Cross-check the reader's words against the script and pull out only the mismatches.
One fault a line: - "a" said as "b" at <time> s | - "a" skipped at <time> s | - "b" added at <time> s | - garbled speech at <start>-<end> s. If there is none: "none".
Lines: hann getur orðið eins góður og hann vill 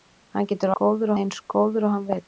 - "orðið" said as "góður" at 0.8 s